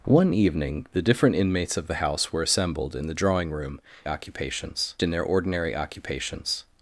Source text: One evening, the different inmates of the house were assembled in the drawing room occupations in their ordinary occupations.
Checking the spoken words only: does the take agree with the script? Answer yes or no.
yes